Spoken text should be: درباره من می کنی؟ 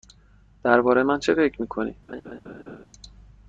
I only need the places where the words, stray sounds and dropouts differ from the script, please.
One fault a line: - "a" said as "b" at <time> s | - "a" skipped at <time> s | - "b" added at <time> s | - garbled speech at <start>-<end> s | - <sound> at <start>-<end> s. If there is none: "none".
- "چه فکر" added at 1.2 s
- laugh at 2.1-2.9 s